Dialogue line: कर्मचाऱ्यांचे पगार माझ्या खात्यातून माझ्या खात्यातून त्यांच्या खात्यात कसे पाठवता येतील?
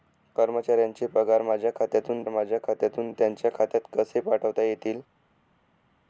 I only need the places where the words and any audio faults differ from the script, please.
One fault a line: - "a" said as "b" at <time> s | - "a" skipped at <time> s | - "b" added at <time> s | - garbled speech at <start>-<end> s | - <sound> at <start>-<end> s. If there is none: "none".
none